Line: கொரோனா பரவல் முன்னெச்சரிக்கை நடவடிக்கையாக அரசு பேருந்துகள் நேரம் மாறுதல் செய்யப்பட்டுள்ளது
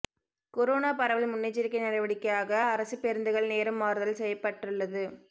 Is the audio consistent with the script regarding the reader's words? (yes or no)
yes